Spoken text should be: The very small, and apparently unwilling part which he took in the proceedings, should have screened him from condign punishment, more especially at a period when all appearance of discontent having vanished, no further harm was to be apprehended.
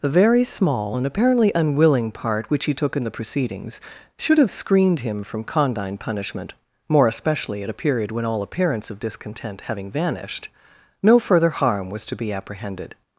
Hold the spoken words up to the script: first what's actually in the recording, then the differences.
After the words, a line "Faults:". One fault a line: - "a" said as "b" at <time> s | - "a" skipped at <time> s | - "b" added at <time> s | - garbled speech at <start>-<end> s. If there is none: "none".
The very small, and apparently unwilling part which he took in the proceedings, should have screened him from condign punishment, more especially at a period when all appearance of discontent having vanished, no further harm was to be apprehended.
Faults:
none